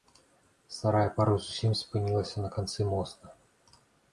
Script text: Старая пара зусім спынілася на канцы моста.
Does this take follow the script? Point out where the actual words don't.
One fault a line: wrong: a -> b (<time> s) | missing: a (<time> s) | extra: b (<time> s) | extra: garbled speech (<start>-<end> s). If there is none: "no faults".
no faults